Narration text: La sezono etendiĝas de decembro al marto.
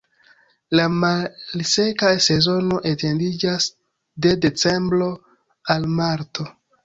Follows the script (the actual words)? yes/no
no